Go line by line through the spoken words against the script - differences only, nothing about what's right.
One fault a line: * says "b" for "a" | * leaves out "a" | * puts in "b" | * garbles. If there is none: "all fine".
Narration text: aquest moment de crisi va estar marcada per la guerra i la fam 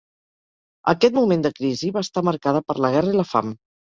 all fine